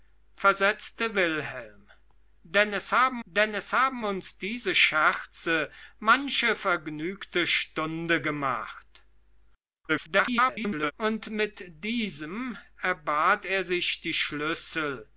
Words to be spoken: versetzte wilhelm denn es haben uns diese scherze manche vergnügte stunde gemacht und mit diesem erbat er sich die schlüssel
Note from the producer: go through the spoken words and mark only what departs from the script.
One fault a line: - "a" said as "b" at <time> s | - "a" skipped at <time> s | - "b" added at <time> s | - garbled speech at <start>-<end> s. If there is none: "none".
- "denn es haben" added at 3.2 s
- garbled speech at 9.9-10.9 s